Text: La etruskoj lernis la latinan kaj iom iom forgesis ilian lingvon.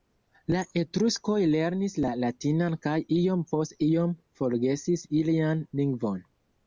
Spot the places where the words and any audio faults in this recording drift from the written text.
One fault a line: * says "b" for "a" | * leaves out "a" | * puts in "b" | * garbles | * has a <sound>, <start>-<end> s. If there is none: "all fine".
* puts in "post"